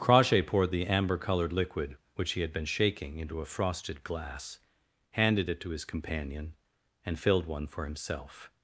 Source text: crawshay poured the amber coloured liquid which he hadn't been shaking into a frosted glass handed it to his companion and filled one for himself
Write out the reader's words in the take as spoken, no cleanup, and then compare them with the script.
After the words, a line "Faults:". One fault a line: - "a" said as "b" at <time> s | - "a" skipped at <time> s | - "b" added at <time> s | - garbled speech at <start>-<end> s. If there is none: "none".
crawshay poured the amber coloured liquid which he had been shaking into a frosted glass handed it to his companion and filled one for himself
Faults:
- "hadn't" said as "had" at 2.4 s